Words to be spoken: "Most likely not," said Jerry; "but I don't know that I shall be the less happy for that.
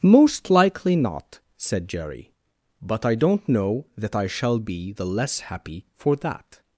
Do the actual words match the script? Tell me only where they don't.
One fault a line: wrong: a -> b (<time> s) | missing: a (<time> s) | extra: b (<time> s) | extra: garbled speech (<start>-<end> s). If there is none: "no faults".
no faults